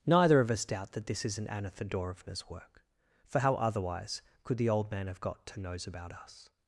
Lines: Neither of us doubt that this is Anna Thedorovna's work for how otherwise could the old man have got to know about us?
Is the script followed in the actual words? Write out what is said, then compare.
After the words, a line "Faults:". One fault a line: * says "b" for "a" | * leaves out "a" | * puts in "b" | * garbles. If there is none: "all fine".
Neither of us doubt that this isn't Anna Thedorovna's work for how otherwise could the old man have got to knows about us?
Faults:
* says "isn't" for "is"
* says "knows" for "know"